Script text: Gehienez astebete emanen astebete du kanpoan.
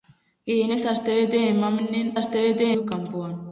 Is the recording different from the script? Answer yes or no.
no